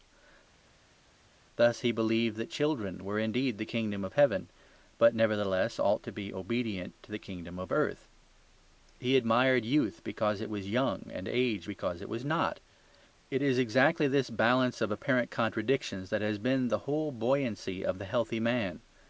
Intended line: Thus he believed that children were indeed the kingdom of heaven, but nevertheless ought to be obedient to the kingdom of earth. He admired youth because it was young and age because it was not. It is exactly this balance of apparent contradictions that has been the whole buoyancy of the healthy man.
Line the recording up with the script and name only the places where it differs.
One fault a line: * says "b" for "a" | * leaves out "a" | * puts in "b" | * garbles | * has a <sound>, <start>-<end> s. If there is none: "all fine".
all fine